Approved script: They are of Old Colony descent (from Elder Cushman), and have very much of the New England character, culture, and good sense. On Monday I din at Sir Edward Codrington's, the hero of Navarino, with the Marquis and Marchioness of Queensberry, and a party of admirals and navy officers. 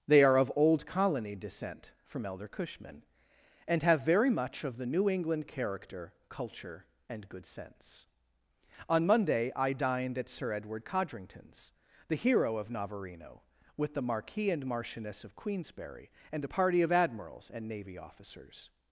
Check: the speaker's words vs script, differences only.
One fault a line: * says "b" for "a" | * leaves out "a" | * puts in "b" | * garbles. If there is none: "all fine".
* says "dined" for "din"